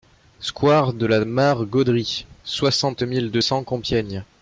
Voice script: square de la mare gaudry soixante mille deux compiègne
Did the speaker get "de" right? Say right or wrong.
right